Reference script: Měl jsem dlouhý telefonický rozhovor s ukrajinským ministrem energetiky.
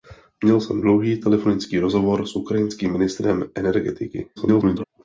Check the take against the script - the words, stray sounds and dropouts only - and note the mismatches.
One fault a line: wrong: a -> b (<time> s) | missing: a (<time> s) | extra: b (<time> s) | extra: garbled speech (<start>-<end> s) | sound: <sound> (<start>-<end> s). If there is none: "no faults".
extra: garbled speech (4.4-4.8 s)